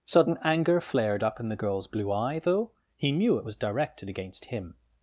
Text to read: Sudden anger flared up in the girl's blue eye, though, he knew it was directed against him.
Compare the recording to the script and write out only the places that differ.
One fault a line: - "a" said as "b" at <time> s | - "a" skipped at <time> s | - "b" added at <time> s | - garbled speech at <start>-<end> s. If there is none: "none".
none